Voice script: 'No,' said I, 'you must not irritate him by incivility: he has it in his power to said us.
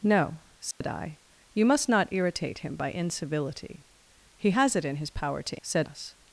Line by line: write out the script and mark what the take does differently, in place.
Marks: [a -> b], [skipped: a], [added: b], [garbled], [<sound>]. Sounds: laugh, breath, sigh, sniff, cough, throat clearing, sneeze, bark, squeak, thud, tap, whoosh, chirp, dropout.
'No,' said [dropout] I, 'you must not irritate him by incivility: he has it in his power to said us.